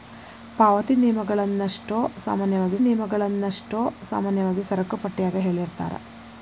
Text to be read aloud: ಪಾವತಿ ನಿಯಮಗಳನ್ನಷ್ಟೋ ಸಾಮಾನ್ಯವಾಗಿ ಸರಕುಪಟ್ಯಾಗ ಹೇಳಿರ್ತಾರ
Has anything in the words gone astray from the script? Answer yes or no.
yes